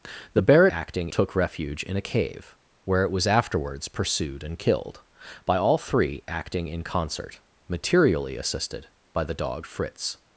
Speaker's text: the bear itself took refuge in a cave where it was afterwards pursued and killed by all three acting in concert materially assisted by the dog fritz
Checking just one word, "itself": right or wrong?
wrong